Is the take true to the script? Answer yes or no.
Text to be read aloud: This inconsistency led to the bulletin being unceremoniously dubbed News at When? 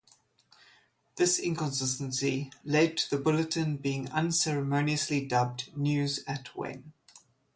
yes